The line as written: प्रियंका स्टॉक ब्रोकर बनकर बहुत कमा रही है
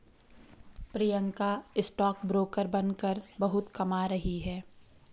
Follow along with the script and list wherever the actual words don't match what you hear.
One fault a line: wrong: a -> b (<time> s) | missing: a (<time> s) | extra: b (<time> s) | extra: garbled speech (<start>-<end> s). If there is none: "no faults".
no faults